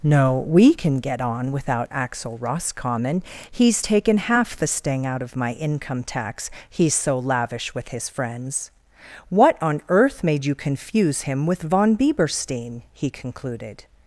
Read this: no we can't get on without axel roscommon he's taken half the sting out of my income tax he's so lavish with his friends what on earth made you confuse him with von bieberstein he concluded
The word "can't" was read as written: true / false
false